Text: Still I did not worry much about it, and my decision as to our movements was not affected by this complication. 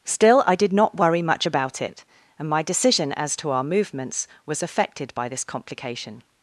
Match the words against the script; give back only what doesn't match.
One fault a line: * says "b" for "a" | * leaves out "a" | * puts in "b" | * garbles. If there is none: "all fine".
* leaves out "not"